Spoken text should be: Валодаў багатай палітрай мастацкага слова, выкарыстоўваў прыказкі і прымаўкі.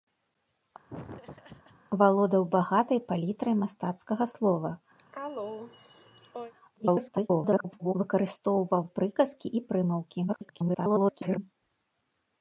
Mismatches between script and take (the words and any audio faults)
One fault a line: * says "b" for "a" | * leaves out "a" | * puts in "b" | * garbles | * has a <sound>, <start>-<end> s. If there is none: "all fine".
* has a laugh, 0.9-1.8 s
* has a cough, 5.0-6.5 s
* garbles
* garbles